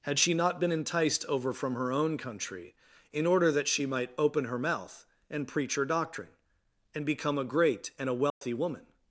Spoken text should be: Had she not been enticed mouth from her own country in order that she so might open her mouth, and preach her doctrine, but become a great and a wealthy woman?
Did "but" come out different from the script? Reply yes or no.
yes